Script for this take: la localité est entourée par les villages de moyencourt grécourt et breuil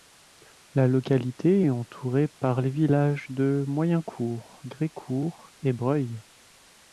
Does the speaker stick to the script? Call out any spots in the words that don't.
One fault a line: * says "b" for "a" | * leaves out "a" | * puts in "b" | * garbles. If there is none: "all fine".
all fine